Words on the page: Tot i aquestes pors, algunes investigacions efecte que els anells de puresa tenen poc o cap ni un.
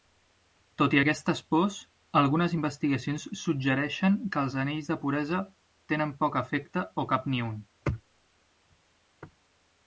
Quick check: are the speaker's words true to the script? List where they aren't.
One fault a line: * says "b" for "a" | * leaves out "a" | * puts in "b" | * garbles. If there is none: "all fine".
* says "suggereixen" for "efecte"
* puts in "efecte"